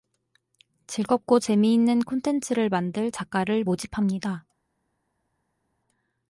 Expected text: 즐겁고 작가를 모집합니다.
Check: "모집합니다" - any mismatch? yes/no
no